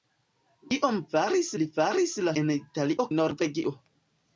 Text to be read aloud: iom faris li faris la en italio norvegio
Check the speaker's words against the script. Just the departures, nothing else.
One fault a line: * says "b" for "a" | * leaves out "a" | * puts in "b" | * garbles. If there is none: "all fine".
all fine